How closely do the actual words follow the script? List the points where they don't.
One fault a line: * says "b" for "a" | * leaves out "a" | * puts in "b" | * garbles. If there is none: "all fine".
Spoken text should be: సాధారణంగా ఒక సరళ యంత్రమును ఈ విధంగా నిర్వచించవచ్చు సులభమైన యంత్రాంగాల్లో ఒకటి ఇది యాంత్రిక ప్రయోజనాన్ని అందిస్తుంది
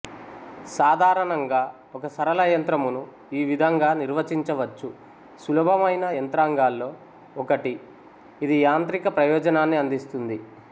all fine